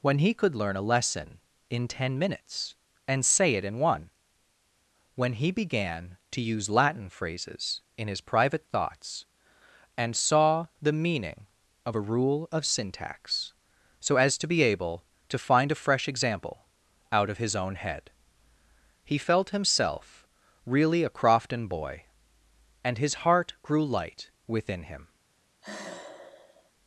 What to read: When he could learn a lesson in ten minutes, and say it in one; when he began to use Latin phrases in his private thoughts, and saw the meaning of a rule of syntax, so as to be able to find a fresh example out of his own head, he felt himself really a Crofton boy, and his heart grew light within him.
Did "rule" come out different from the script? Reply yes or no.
no